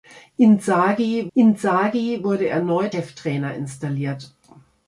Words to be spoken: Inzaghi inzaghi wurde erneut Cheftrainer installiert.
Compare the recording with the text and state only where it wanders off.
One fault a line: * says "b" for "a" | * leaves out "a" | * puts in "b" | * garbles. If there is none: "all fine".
all fine